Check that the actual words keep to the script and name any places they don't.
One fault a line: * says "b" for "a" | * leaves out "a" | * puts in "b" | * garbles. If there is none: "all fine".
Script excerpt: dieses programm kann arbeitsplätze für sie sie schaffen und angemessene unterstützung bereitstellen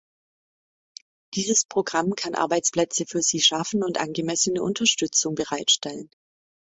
* leaves out "sie"